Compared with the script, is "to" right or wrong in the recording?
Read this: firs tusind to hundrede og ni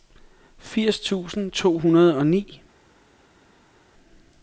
right